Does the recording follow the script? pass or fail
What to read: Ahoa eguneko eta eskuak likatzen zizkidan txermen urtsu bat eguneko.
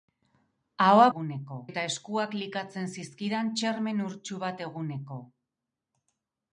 pass